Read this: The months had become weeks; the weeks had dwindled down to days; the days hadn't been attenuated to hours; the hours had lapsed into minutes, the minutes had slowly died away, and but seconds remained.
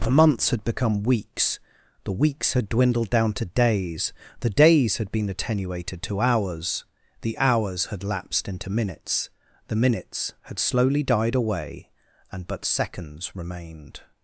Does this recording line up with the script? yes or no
no